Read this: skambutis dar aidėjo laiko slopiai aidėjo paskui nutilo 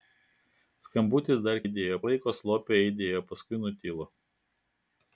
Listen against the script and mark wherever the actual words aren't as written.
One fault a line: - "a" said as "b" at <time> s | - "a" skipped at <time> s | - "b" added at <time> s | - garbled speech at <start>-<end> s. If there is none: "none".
none